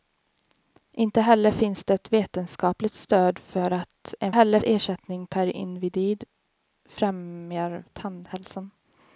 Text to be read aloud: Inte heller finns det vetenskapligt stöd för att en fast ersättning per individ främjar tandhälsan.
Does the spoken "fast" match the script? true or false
false